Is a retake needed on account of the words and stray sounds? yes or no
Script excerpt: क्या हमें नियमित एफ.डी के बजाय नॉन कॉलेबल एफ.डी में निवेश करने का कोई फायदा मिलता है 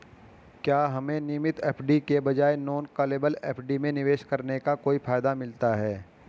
no